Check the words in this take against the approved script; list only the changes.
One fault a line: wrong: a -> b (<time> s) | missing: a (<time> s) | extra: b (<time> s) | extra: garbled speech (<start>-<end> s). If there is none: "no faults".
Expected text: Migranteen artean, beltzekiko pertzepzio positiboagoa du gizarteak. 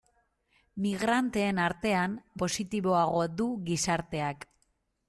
missing: beltzekiko pertzepzio (2.1 s)